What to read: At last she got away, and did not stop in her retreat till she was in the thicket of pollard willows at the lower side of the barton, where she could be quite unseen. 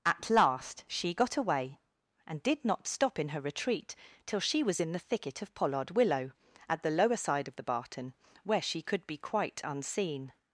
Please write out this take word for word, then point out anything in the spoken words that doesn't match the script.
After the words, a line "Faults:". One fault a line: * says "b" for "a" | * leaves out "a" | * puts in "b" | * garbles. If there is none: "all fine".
At last she got away, and did not stop in her retreat till she was in the thicket of pollard willow at the lower side of the barton, where she could be quite unseen.
Faults:
* says "willow" for "willows"